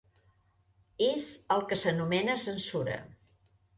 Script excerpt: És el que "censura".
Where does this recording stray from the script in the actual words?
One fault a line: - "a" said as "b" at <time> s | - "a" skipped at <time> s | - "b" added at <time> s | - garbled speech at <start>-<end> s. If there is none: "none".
- "s'anomena" added at 1.8 s